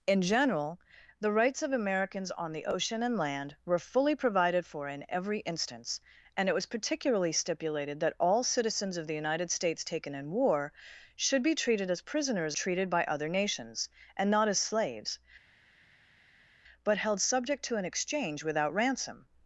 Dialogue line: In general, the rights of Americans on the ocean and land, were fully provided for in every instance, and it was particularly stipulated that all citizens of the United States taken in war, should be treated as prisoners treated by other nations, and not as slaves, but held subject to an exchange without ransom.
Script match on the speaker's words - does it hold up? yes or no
yes